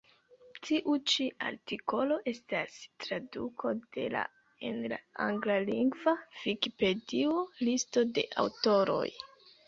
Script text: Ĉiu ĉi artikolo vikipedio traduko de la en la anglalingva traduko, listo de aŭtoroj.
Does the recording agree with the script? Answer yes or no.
no